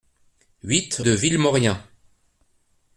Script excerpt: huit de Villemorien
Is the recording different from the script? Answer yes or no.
no